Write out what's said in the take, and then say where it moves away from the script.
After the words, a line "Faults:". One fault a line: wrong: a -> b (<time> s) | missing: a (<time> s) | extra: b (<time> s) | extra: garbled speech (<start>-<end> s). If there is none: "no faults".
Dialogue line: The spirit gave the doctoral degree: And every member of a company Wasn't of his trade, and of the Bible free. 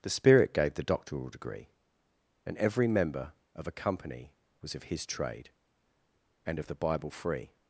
The spirit gave the doctoral degree: And every member of a company Was of his trade, and of the Bible free.
Faults:
wrong: Wasn't -> Was (4.6 s)